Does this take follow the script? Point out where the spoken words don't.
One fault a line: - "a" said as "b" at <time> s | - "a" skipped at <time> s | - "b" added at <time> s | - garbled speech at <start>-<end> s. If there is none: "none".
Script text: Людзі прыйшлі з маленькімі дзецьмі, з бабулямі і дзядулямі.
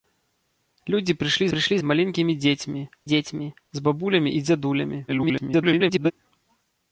- "прыйшлі" added at 1.5 s
- "дзецьмі" added at 3.1 s
- garbled speech at 5.1-6.1 s